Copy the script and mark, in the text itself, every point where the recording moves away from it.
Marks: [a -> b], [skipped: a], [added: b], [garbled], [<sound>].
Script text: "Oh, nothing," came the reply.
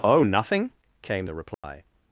"Oh, nothing," came the reply. [dropout]